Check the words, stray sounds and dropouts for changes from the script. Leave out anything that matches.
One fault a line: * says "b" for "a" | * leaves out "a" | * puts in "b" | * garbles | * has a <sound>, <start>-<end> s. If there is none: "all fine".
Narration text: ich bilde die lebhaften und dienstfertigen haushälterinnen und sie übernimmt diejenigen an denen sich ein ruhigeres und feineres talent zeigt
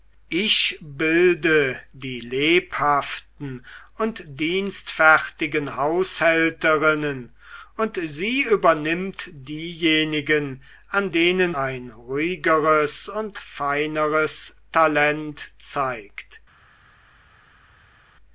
* leaves out "sich"